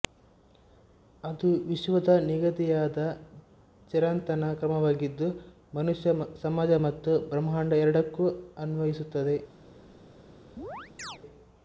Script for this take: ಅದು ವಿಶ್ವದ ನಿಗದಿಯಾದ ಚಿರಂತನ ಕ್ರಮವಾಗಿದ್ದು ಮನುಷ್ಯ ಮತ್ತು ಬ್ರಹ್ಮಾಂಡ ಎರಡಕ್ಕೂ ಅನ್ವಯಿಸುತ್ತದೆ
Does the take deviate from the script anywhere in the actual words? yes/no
yes